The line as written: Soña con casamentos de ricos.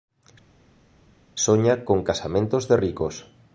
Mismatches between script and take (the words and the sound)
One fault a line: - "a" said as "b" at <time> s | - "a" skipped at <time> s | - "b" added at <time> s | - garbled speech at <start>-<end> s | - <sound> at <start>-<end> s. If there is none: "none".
none